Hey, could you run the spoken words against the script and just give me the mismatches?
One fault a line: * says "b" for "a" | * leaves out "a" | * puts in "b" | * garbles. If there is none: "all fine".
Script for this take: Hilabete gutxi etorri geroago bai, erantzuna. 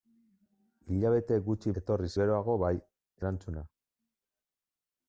all fine